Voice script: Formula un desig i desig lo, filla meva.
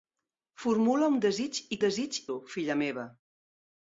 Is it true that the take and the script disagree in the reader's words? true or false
false